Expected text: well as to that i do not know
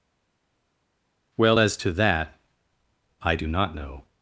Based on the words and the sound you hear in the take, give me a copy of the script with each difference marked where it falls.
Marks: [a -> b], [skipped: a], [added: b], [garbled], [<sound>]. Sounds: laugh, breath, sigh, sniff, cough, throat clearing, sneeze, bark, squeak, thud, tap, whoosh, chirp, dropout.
well as to that i do not know